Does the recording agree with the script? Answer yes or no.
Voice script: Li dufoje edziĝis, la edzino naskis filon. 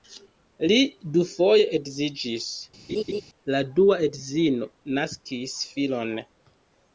no